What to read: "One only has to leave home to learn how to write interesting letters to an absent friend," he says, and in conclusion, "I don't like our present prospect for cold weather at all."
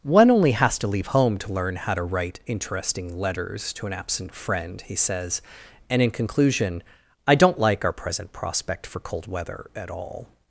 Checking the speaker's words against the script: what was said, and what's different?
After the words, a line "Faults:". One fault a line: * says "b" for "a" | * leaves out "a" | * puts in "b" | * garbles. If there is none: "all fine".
"One only has to leave home to learn how to write interesting letters to an absent friend," he says, and in conclusion, "I don't like our present prospect for cold weather at all."
Faults:
all fine